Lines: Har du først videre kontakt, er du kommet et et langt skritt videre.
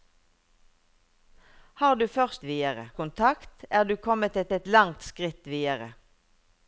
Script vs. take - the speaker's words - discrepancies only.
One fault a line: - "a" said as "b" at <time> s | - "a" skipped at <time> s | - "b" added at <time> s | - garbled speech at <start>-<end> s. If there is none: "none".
none